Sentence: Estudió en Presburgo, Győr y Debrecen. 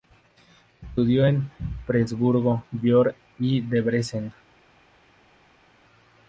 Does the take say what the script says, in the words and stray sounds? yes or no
yes